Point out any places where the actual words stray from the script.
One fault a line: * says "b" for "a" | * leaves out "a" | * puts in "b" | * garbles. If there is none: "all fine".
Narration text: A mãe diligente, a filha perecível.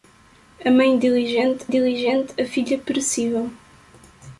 * puts in "diligente"